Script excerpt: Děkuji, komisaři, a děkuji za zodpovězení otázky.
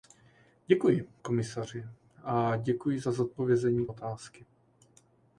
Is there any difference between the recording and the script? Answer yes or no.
no